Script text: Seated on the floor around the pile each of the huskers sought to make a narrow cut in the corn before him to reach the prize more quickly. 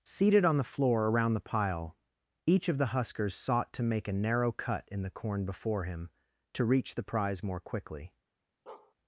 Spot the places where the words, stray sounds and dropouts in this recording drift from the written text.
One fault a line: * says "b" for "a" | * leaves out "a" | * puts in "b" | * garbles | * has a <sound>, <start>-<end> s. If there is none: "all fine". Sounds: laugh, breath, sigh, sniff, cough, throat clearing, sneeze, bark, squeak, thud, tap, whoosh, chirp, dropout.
* has a bark, 8.7-8.9 s